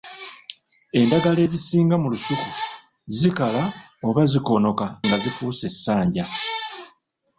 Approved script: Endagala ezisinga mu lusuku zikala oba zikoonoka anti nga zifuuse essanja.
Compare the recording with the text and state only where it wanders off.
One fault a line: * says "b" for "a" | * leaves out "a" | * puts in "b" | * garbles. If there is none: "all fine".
* leaves out "anti"